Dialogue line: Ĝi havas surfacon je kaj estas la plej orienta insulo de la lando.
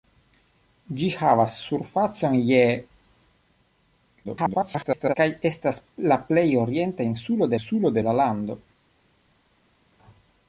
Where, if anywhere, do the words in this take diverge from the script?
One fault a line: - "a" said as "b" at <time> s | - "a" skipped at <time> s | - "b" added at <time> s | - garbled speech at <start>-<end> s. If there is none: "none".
- garbled speech at 4.2-5.1 s
- "insulo" added at 7.6 s